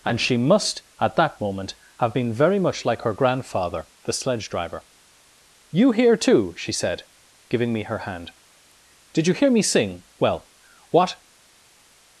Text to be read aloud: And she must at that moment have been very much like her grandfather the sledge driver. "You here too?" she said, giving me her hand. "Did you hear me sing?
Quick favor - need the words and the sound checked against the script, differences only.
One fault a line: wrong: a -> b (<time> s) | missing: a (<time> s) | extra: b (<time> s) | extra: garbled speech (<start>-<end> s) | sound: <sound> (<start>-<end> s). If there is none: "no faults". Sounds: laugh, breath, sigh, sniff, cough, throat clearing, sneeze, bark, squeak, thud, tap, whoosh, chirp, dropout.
extra: Well what (10.2 s)